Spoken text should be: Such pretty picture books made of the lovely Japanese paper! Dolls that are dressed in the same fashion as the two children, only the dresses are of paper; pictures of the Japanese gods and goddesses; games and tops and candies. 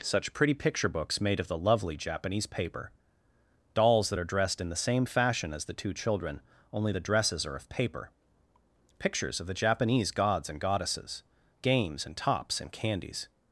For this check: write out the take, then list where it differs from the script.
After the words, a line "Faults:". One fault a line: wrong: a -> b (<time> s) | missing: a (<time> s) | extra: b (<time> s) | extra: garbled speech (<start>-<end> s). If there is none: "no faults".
Such pretty picture books made of the lovely Japanese paper! Dolls that are dressed in the same fashion as the two children, only the dresses are of paper; pictures of the Japanese gods and goddesses; games and tops and candies.
Faults:
no faults